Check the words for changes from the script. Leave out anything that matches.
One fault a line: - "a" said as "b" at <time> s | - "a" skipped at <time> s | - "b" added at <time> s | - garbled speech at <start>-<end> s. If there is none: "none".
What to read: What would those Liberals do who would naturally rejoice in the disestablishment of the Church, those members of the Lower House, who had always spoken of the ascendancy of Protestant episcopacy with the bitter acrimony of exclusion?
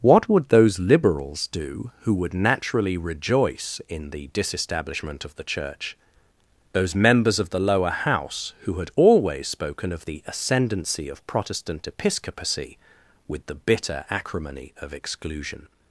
none